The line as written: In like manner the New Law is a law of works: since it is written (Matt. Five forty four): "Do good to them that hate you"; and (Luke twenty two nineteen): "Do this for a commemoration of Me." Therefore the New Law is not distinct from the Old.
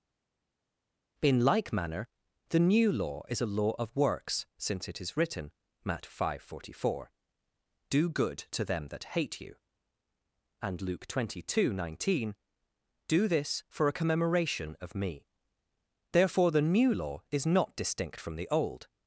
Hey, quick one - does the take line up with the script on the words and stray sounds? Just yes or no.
yes